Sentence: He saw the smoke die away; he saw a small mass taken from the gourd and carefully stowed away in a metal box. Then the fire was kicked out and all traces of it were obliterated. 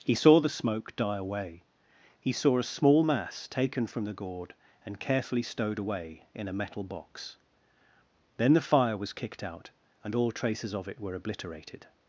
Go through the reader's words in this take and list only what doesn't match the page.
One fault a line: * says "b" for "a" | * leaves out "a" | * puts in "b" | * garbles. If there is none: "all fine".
all fine